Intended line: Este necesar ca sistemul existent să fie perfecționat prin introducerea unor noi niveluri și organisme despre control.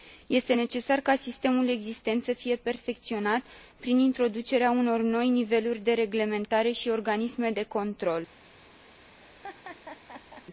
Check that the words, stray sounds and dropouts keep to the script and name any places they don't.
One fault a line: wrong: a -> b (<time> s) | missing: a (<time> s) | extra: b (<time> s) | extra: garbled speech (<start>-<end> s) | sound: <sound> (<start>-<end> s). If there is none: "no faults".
extra: de reglementare (5.8 s)
wrong: despre -> de (7.5 s)
sound: laugh (9.2-10.5 s)